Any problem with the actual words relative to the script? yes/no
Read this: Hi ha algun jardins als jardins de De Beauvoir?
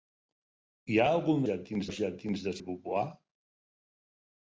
no